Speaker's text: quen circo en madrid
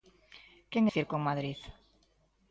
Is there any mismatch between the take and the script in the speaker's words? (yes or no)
no